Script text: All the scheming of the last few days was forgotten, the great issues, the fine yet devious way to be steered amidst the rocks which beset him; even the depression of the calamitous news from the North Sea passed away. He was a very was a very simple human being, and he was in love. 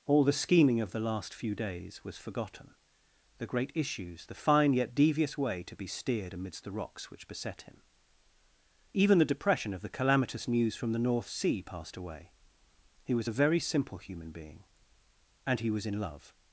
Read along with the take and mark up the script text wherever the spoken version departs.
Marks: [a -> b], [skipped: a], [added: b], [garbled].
All the scheming of the last few days was forgotten, the great issues, the fine yet devious way to be steered amidst the rocks which beset him; even the depression of the calamitous news from the North Sea passed away. He was a very [skipped: was a very] simple human being, and he was in love.